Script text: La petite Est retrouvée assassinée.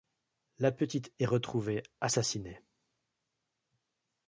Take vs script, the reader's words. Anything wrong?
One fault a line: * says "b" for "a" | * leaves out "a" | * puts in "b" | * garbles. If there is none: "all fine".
all fine